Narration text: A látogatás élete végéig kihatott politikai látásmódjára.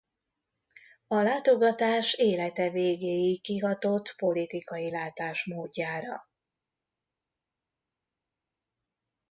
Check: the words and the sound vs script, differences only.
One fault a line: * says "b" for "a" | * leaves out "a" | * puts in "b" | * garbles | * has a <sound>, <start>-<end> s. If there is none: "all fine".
all fine